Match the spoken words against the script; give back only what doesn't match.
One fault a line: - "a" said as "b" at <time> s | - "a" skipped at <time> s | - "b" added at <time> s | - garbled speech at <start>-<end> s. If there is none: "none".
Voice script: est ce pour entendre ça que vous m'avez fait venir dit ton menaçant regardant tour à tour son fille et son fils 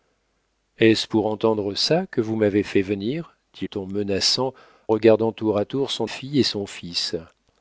none